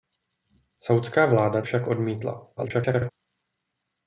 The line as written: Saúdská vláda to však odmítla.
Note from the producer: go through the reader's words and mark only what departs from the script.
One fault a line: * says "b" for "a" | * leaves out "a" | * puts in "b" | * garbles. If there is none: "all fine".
* leaves out "to"
* garbles